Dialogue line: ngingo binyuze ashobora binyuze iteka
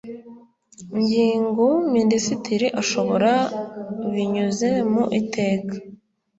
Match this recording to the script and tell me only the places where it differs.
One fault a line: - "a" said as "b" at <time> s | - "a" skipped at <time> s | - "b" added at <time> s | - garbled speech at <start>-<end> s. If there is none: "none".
- "binyuze" said as "minisitiri" at 1.9 s
- "mu" added at 4.9 s